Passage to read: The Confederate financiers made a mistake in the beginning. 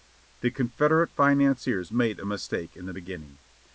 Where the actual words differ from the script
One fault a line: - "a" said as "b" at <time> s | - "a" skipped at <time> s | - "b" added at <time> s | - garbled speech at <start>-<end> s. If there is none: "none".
none